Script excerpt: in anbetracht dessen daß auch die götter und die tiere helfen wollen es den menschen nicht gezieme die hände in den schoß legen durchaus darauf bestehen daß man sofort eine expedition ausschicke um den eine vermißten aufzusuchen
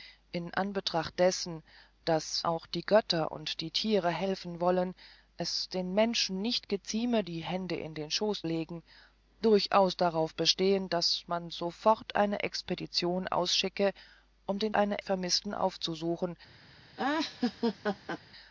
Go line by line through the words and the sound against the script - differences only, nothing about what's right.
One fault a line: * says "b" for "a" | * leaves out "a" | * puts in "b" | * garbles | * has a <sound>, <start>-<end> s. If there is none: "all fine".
* has a laugh, 17.0-18.2 s